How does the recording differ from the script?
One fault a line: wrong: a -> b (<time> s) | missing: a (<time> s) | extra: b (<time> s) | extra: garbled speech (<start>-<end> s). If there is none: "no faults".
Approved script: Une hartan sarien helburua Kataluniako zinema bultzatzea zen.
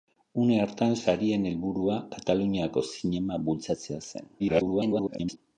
extra: garbled speech (4.4-5.4 s)